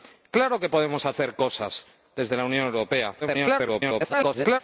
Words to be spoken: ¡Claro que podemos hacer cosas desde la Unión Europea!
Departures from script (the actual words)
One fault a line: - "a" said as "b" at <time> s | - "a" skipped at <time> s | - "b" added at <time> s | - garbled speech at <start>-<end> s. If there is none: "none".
- garbled speech at 3.2-4.6 s